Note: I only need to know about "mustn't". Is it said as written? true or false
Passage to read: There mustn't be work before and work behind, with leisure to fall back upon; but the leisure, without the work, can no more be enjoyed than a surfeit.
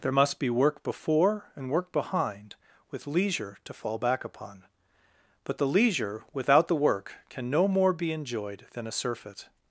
false